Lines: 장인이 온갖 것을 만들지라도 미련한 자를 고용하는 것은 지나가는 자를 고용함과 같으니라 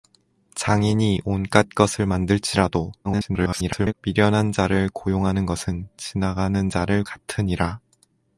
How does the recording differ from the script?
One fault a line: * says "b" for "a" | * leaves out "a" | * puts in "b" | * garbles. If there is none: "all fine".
* garbles
* leaves out "고용함과"